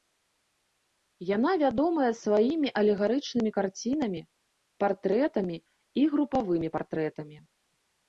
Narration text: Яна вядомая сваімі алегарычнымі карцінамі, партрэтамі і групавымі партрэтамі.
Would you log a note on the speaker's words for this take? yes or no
no